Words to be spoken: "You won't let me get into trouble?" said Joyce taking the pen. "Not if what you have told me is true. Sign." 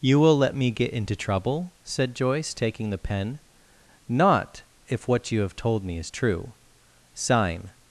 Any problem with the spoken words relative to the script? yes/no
yes